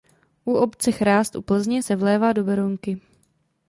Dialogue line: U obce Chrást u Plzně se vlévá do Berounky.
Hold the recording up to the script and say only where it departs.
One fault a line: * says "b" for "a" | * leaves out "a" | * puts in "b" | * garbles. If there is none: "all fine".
all fine